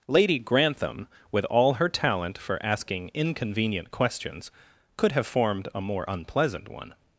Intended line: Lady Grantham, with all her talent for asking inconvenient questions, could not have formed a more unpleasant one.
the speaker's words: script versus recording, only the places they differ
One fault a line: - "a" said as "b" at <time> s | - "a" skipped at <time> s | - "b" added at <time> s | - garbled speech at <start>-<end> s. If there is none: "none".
- "not" skipped at 5.1 s